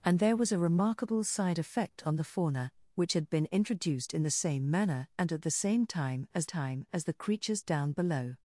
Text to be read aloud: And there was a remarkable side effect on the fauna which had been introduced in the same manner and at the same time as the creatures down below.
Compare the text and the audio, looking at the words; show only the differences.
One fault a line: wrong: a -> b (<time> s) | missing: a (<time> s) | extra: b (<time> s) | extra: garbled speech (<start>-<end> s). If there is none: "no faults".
extra: time as (6.4 s)